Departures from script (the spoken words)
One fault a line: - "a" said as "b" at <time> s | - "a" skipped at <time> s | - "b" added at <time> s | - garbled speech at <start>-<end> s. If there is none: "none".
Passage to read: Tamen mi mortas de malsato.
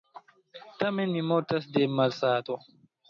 none